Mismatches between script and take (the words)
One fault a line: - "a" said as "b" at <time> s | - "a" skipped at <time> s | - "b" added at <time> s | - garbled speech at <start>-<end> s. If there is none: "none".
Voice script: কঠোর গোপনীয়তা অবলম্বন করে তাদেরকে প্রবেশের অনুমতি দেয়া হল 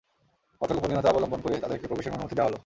none